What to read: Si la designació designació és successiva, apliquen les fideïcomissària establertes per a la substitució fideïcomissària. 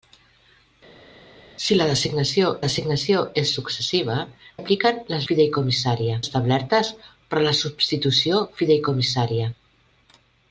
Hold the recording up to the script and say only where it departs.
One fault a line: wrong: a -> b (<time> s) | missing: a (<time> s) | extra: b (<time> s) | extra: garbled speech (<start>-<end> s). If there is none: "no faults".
no faults